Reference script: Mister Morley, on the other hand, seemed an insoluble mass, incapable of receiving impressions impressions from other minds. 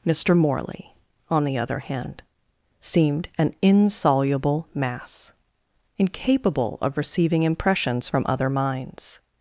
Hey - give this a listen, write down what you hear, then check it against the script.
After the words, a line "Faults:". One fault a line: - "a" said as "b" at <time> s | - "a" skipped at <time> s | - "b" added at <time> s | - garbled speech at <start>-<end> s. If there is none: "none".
Mister Morley, on the other hand, seemed an insoluble mass, incapable of receiving impressions from other minds.
Faults:
- "impressions" skipped at 8.1 s